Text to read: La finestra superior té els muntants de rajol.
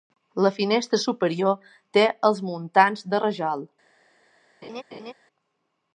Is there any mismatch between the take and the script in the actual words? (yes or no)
no